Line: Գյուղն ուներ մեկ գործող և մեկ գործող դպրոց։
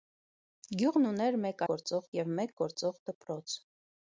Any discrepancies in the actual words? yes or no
no